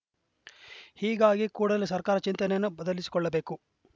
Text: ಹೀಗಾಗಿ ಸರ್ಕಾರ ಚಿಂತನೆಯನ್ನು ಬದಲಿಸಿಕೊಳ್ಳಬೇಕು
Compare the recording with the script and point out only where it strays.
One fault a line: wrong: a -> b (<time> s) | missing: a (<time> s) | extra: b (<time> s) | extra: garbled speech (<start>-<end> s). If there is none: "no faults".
extra: ಕೂಡಲೇ (1.5 s)